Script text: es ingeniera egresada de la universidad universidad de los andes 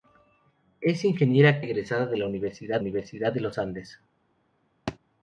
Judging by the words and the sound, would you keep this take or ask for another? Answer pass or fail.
fail